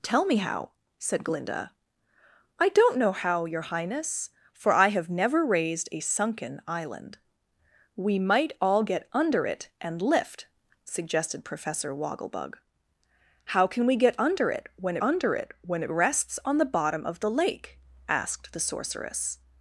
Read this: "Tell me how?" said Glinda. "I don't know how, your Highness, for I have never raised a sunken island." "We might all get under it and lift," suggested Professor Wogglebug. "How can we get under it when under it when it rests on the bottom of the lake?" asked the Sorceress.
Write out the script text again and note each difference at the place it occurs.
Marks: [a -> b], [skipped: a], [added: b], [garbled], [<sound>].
"Tell me how?" said Glinda. "I don't know how, your Highness, for I have never raised a sunken island." "We might all get under it and lift," suggested Professor Wogglebug. "How can we get under it when under it when it rests on the bottom of the lake?" asked the Sorceress.